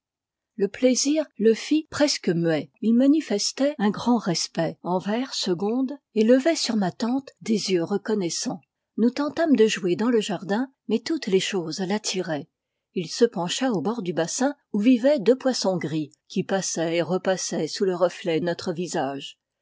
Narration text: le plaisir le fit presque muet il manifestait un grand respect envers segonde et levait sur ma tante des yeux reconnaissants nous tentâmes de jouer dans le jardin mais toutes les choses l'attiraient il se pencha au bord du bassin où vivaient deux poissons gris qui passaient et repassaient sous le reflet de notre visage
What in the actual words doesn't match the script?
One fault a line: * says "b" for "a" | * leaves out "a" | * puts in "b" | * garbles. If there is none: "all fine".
* leaves out "de"